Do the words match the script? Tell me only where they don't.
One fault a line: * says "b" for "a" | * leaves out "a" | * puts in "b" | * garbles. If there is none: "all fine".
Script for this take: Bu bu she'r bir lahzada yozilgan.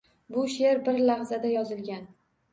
* leaves out "bu"